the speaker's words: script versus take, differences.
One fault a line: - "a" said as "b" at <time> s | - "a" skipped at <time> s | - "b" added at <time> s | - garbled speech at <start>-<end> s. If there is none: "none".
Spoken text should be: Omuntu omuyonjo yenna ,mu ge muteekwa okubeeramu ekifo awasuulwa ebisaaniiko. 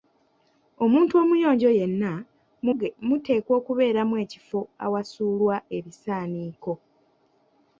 none